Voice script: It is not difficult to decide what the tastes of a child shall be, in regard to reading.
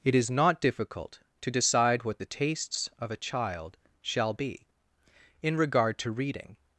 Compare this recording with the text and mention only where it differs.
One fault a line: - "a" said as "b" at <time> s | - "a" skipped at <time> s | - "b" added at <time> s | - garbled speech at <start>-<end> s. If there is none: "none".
none